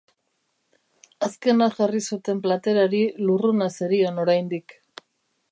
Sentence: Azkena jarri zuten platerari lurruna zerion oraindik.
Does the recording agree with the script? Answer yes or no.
yes